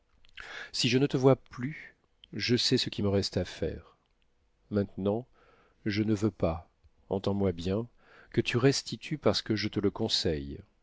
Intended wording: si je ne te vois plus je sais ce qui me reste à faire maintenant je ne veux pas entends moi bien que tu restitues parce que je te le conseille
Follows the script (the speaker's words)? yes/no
yes